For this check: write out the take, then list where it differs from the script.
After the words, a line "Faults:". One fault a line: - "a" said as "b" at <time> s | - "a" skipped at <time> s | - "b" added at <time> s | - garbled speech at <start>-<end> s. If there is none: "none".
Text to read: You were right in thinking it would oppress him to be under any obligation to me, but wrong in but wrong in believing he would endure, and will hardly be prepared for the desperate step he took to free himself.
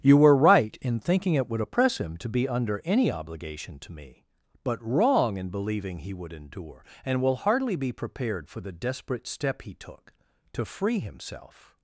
You were right in thinking it would oppress him to be under any obligation to me, but wrong in believing he would endure, and will hardly be prepared for the desperate step he took to free himself.
Faults:
- "but wrong in" skipped at 5.5 s